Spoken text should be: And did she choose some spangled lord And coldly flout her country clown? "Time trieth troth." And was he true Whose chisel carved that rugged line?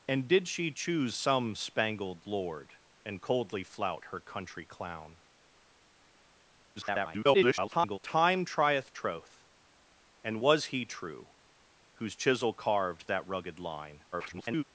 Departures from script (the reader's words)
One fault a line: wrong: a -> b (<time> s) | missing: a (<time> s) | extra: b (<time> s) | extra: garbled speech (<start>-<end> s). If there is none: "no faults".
extra: garbled speech (6.8-8.0 s)
extra: garbled speech (14.1-14.6 s)